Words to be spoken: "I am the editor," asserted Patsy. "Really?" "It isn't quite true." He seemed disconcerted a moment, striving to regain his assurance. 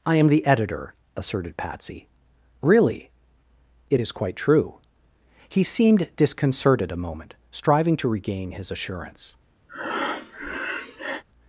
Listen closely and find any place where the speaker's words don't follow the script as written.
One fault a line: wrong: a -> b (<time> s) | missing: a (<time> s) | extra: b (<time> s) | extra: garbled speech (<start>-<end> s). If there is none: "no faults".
wrong: isn't -> is (4.0 s)